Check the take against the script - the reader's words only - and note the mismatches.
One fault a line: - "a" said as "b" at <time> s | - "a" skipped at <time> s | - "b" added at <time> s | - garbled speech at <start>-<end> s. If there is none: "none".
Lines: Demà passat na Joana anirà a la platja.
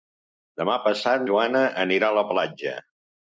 - "na" skipped at 1.3 s